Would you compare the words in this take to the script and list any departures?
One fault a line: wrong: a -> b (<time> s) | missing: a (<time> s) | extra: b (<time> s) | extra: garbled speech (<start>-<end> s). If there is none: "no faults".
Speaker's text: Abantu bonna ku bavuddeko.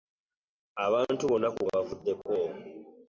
no faults